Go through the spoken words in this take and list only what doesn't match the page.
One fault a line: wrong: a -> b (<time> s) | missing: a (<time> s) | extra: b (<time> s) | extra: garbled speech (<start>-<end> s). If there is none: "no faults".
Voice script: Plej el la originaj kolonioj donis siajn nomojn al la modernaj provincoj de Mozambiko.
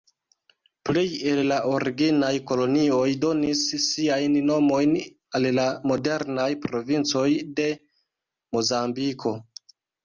no faults